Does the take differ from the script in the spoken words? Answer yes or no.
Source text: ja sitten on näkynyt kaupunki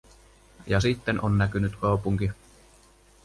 no